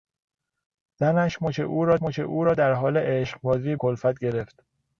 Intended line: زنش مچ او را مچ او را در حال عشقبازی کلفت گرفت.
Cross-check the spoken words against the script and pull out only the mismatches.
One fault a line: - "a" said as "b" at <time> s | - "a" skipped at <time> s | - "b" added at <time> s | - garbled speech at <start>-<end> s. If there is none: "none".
none